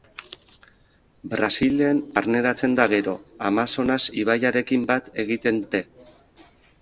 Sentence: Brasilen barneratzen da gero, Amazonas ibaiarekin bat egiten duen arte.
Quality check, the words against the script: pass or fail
fail